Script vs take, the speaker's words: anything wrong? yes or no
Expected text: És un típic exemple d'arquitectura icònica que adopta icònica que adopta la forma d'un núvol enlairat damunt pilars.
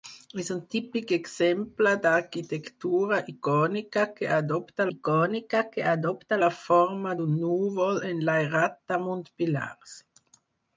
no